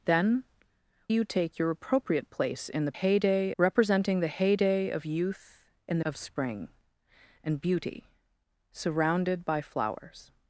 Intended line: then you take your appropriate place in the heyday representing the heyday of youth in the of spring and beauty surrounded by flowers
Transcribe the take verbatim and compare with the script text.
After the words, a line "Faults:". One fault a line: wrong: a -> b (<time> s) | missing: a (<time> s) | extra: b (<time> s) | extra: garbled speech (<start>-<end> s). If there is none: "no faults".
then you take your appropriate place in the heyday representing the heyday of youth in the of spring and beauty surrounded by flowers
Faults:
no faults